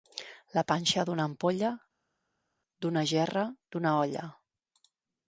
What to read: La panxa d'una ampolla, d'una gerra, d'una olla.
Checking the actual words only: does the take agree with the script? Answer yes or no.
yes